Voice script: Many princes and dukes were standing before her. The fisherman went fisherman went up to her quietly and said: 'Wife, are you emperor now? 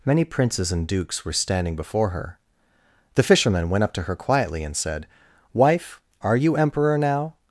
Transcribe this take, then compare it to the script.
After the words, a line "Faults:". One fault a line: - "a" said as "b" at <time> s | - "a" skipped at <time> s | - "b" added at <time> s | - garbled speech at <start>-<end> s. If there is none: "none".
Many princes and dukes were standing before her. The fisherman went up to her quietly and said: 'Wife, are you emperor now?
Faults:
- "fisherman went" skipped at 3.8 s